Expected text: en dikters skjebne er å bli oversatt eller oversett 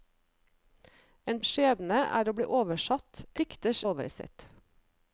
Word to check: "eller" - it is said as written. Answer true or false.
false